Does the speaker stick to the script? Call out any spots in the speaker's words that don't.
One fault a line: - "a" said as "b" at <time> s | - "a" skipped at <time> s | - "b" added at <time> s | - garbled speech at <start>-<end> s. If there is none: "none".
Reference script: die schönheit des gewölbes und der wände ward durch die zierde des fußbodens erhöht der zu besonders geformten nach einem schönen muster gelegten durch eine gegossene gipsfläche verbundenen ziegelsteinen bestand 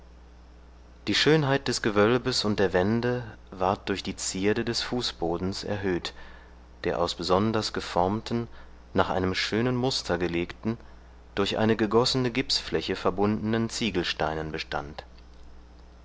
- "zu" said as "aus" at 7.0 s